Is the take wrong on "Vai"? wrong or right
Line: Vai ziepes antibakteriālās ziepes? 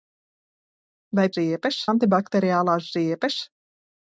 right